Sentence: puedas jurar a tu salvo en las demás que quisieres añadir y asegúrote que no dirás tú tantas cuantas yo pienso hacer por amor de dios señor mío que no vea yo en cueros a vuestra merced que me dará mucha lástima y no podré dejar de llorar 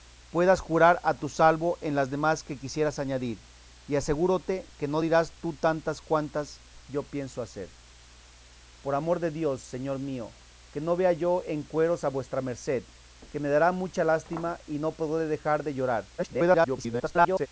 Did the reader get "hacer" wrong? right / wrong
right